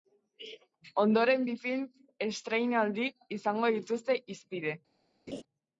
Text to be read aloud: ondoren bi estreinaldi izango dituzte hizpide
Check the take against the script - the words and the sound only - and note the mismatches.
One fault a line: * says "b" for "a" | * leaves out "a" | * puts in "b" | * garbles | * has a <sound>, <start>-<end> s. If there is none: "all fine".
* puts in "film"
* has a laugh, 5.3-5.4 s